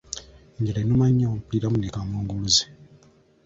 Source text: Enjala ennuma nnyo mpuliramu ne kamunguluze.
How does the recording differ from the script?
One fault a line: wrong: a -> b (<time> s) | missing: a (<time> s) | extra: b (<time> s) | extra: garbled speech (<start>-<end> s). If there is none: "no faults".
no faults